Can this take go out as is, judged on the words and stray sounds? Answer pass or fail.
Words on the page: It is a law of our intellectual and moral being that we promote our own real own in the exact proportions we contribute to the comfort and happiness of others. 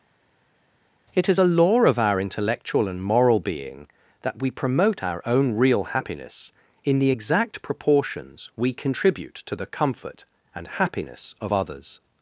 fail